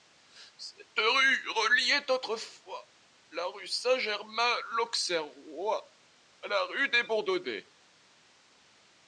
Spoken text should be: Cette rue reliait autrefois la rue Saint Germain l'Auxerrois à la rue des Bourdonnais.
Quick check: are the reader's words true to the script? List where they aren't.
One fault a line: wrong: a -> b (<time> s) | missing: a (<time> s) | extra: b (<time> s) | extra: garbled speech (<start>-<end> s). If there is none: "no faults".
no faults